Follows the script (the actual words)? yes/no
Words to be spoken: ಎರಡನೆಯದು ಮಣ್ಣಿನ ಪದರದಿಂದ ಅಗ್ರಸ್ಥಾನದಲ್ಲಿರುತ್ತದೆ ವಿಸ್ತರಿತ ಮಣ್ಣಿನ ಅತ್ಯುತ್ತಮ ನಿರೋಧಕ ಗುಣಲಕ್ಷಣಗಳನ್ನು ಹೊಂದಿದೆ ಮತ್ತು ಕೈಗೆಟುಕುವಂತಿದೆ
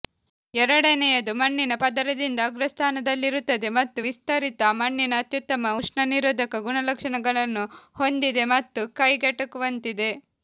no